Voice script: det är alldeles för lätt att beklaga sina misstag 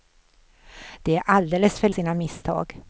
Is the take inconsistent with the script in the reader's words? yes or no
yes